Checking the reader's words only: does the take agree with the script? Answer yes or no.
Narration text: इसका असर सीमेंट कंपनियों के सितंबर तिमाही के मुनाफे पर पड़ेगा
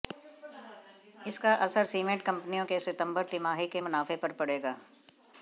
yes